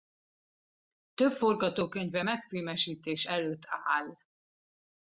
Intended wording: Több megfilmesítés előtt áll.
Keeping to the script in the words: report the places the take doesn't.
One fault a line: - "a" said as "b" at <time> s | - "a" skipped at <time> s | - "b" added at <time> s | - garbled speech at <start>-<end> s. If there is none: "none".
- "forgatókönyve" added at 1.3 s